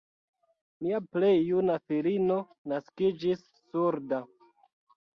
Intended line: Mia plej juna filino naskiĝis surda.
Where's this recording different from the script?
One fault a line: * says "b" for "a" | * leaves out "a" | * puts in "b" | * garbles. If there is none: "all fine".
all fine